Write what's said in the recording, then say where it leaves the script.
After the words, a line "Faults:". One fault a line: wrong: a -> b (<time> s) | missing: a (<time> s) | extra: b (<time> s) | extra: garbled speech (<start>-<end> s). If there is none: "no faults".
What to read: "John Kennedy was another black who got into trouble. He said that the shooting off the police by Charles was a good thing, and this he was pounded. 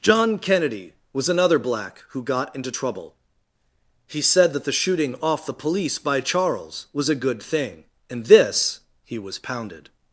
"John Kennedy was another black who got into trouble. He said that the shooting off the police by Charles was a good thing, and this he was pounded.
Faults:
no faults